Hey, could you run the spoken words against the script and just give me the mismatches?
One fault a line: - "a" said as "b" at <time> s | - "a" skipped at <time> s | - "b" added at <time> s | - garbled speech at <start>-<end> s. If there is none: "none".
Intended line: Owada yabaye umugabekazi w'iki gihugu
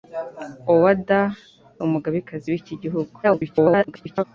- "yabaye" skipped at 1.2 s
- garbled speech at 3.2-4.2 s